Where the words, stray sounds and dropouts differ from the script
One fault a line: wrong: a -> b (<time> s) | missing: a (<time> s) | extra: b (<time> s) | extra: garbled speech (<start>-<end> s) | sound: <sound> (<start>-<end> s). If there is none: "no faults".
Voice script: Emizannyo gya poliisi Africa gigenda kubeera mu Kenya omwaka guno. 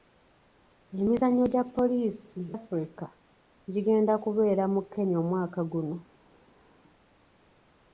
no faults